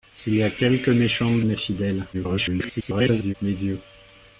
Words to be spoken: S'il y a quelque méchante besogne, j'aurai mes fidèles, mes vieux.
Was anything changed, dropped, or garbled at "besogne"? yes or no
yes